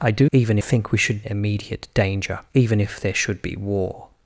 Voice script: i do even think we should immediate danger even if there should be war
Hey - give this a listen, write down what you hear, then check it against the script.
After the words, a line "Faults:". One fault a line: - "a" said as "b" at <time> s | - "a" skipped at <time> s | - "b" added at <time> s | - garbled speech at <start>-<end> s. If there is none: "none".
i do even think we should immediate danger even if there should be war
Faults:
none